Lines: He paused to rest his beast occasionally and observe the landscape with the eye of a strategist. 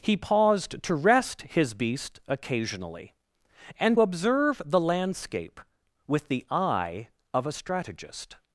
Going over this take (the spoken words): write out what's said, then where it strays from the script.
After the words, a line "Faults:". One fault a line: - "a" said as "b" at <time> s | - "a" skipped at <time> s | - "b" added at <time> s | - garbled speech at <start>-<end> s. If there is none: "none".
He paused to rest his beast occasionally and observe the landscape with the eye of a strategist.
Faults:
none